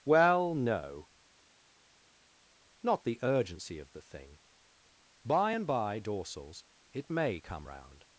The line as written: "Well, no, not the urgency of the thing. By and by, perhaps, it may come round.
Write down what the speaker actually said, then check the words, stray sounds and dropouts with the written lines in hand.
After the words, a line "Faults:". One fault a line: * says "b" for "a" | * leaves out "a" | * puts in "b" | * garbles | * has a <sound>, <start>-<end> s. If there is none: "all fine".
"Well, no, not the urgency of the thing. By and by, dorsals, it may come round.
Faults:
* says "dorsals" for "perhaps"